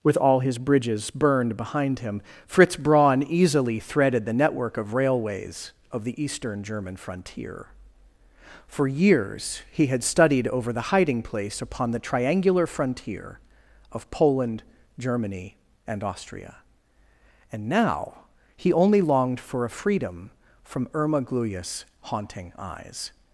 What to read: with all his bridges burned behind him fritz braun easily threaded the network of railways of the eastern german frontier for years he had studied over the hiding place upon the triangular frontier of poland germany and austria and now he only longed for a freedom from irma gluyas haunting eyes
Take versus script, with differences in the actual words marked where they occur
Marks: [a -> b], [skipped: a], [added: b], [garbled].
with all his bridges burned behind him fritz braun easily threaded the network of railways of the eastern german frontier for years he had studied over the hiding place upon the triangular frontier of poland germany and austria and now he only longed for a freedom from irma gluyas haunting eyes